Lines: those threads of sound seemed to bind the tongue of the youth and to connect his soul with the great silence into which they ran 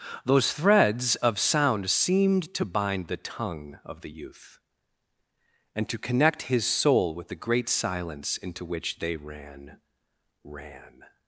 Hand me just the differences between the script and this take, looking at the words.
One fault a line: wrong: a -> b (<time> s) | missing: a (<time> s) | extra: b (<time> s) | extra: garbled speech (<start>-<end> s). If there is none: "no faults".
extra: ran (10.4 s)